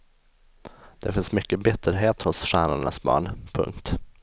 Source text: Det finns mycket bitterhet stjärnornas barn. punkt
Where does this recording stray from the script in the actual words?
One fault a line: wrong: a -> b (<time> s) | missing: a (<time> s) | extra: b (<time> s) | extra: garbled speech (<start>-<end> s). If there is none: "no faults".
extra: hos (2.2 s)